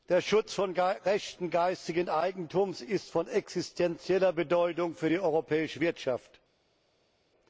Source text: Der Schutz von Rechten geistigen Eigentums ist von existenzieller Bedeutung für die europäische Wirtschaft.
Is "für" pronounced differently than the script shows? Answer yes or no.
no